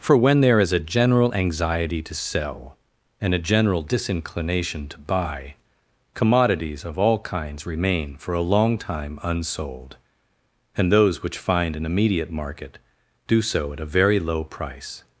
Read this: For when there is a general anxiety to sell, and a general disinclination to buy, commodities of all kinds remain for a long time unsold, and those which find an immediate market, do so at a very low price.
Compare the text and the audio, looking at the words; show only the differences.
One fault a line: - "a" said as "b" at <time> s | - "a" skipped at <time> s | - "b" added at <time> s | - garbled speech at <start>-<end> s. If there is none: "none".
none